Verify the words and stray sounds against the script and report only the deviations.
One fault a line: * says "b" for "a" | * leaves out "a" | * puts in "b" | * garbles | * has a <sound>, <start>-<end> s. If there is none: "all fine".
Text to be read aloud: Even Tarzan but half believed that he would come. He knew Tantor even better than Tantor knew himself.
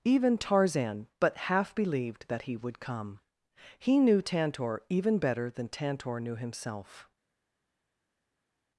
all fine